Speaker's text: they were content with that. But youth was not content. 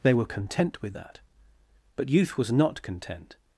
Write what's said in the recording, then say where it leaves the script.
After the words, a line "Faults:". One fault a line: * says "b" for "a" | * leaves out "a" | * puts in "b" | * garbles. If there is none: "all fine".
they were content with that. But youth was not content.
Faults:
all fine